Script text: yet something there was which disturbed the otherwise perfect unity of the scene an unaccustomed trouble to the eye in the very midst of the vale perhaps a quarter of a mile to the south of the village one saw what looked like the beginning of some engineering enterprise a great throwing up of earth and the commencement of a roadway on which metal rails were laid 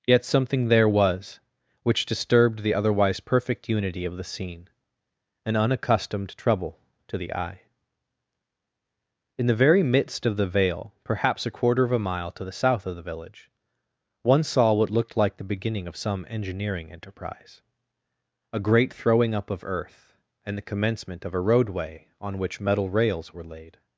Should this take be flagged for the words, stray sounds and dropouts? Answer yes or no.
no